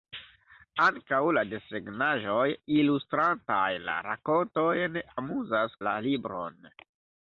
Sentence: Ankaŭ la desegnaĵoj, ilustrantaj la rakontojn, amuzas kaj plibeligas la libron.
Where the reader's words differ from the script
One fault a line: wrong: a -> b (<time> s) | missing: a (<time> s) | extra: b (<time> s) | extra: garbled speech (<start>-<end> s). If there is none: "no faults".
missing: kaj plibeligas (5.8 s)